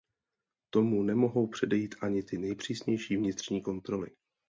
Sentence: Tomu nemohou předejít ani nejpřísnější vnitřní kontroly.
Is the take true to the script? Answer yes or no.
no